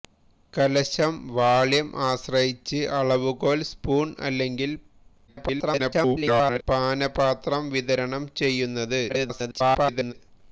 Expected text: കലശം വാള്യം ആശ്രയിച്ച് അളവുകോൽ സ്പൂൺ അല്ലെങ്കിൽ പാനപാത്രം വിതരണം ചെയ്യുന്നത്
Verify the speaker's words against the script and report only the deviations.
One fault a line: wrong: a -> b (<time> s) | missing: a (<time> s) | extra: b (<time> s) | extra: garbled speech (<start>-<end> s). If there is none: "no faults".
extra: garbled speech (5.3-6.6 s)
extra: garbled speech (9.1-10.1 s)